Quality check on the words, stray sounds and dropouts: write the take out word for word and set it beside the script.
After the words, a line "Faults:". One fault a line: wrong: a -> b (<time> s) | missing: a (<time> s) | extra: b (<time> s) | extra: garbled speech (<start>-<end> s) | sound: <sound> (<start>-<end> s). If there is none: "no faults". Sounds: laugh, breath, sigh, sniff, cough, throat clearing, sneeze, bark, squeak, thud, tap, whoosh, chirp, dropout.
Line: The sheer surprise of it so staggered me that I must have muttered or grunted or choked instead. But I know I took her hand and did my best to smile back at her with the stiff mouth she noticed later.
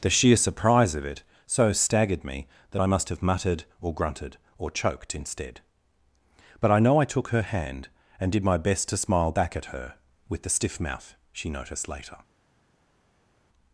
The sheer surprise of it so staggered me that I must have muttered or grunted or choked instead. But I know I took her hand and did my best to smile back at her with the stiff mouth she noticed later.
Faults:
no faults